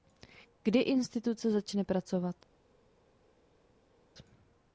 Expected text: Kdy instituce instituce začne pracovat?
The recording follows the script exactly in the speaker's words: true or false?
false